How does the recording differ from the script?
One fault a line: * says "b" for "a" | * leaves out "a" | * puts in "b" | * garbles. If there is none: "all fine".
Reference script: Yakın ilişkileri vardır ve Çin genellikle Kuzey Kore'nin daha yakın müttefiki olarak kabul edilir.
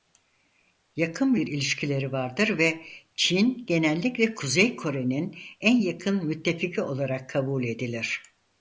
* puts in "bir"
* says "en" for "daha"